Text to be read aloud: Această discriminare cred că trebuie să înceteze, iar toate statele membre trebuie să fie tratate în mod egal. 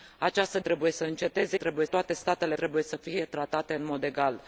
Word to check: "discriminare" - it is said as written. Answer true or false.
false